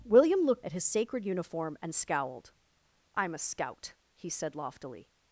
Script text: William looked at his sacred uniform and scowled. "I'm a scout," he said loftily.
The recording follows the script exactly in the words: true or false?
true